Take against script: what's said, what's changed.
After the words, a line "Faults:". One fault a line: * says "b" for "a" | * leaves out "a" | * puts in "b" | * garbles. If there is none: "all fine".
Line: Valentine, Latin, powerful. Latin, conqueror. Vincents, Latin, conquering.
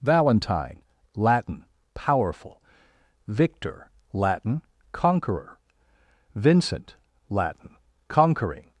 Valentine, Latin, powerful. Victor, Latin, conqueror. Vincent, Latin, conquering.
Faults:
* puts in "Victor"
* says "Vincent" for "Vincents"